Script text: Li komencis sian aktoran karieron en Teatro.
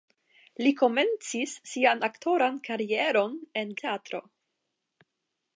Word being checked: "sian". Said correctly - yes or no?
yes